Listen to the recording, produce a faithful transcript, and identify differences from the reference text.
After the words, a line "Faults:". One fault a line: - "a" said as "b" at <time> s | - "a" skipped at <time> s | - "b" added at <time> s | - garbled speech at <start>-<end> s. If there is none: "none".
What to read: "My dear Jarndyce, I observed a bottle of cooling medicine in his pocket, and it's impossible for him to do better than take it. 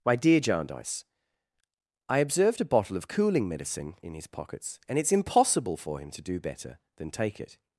"My dear Jarndyce, I observed a bottle of cooling medicine in his pockets, and it's impossible for him to do better than take it.
Faults:
- "pocket" said as "pockets" at 4.3 s